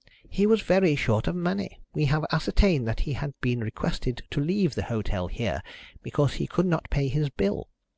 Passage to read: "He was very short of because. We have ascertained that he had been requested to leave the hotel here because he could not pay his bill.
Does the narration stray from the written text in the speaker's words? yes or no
yes